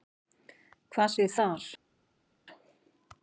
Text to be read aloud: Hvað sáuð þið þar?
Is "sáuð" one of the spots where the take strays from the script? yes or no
yes